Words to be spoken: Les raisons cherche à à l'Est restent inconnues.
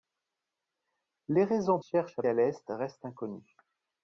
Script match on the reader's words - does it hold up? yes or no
yes